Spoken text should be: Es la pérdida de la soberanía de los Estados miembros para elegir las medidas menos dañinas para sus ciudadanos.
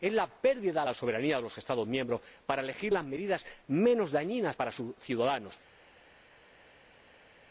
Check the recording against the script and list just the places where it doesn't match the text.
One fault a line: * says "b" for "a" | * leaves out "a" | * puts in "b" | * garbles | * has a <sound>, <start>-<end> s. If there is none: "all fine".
all fine